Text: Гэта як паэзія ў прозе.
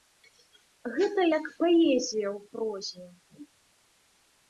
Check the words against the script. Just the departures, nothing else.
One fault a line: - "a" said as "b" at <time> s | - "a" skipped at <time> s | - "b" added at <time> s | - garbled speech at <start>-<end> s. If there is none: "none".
none